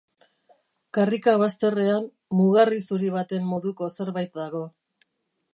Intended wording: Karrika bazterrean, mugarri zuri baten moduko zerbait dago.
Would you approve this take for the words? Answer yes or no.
yes